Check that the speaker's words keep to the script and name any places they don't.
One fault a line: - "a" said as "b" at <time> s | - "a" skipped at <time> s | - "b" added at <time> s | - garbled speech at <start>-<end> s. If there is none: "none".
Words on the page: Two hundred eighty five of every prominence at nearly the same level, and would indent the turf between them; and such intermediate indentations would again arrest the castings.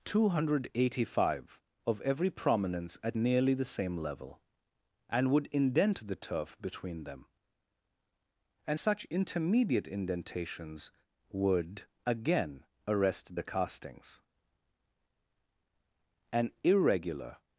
- "An irregular" added at 16.3 s